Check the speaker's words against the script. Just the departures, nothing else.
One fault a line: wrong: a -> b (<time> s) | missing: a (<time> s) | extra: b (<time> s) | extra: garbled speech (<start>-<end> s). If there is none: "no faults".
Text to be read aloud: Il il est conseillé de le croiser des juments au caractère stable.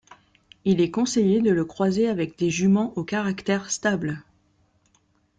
missing: il (0.8 s)
extra: avec (2.1 s)